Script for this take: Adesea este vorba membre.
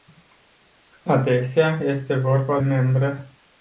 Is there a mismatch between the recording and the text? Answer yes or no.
no